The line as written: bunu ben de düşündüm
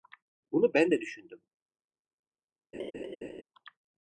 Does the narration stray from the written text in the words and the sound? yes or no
yes